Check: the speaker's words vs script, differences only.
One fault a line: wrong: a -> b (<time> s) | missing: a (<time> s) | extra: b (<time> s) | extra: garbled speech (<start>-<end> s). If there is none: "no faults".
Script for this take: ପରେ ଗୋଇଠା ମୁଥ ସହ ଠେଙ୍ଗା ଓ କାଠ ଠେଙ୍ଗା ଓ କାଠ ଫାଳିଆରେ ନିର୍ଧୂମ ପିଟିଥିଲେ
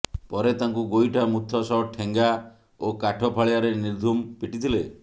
extra: ତାଙ୍କୁ (0.6 s)
missing: ଠେଙ୍ଗା ଓ କାଠ (3.3 s)